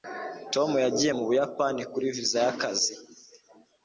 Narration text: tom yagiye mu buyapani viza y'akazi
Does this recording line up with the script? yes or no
no